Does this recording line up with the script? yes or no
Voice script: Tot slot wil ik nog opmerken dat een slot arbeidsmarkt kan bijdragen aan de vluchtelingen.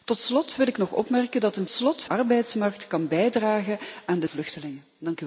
yes